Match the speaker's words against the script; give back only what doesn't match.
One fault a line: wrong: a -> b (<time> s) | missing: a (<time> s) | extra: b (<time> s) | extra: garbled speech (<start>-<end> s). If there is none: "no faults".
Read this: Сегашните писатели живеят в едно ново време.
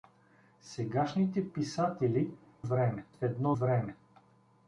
wrong: живеят -> време (2.6 s)
missing: ново (3.6 s)